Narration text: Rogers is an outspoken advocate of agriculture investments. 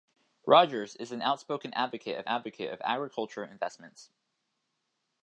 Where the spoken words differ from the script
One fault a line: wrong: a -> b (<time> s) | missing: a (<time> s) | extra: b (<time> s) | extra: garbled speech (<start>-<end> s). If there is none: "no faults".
extra: advocate of (2.3 s)